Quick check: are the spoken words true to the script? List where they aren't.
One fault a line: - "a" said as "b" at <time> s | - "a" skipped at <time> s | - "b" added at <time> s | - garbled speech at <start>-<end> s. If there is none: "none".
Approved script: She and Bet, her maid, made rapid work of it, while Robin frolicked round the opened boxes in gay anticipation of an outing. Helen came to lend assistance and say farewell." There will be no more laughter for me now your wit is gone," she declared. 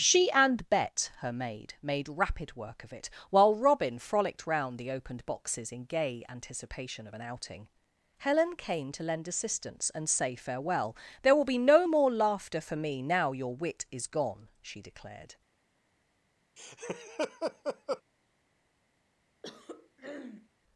none